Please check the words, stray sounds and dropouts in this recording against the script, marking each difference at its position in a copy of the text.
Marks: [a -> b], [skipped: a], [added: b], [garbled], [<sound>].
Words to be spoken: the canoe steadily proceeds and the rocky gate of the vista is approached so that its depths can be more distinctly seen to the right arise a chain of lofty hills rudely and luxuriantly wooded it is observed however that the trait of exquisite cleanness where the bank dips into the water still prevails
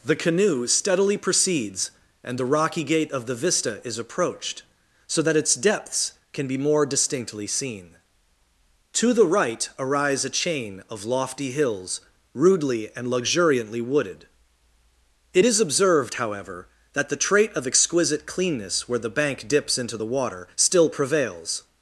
the canoe steadily proceeds and the rocky gate of the vista is approached so that its depths can be more distinctly seen to the right arise a chain of lofty hills rudely and luxuriantly wooded it is observed however that the trait of exquisite cleanness where the bank dips into the water still prevails